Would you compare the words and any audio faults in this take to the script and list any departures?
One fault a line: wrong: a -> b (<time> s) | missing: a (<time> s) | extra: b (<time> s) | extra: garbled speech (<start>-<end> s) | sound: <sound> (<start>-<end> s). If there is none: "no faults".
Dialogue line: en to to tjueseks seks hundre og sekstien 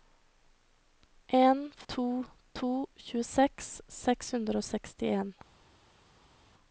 no faults